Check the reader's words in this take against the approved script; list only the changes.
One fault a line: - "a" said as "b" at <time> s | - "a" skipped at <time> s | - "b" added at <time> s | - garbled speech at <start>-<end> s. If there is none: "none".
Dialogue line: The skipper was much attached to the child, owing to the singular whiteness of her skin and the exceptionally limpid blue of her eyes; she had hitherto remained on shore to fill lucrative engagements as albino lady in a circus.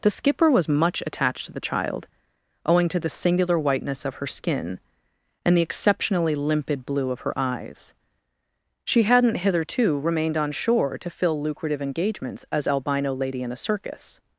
- "had" said as "hadn't" at 9.0 s